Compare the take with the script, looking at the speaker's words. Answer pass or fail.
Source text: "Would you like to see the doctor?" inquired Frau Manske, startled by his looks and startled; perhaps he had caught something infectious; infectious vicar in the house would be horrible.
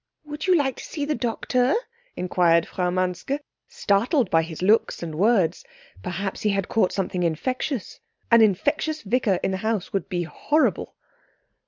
fail